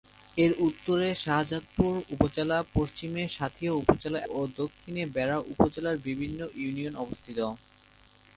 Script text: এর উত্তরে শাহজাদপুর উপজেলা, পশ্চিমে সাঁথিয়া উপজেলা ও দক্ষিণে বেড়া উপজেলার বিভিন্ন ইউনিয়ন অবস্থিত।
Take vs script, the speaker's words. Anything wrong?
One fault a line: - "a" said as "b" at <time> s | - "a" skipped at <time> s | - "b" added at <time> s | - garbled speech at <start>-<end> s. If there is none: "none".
none